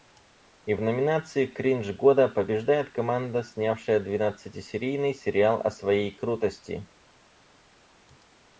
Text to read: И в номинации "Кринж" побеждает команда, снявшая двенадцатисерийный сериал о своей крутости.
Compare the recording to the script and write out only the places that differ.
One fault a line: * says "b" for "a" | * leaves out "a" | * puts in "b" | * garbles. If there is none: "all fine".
* puts in "года"